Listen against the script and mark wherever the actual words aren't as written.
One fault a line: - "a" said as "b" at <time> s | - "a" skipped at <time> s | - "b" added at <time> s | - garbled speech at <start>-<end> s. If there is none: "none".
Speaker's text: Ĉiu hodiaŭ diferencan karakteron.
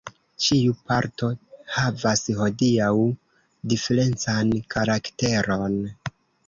- "parto havas" added at 0.9 s